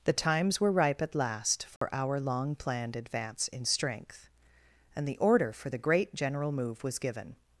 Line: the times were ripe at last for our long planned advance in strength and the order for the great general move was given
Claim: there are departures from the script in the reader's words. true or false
false